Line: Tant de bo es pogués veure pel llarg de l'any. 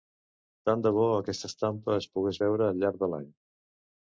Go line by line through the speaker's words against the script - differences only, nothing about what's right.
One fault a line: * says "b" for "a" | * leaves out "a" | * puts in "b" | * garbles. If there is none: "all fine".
* puts in "aquesta estampa"
* says "al" for "pel"